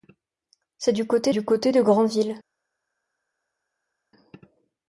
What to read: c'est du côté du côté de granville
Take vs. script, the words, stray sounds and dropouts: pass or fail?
pass